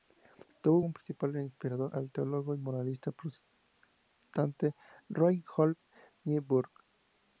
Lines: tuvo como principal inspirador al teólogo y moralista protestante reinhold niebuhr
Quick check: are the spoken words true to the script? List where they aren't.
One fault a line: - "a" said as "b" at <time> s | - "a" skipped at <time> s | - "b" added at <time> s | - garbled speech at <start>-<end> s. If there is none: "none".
none